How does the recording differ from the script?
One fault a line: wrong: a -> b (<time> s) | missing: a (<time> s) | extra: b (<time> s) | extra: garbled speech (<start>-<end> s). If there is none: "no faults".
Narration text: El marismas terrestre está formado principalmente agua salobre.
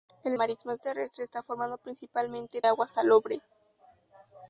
no faults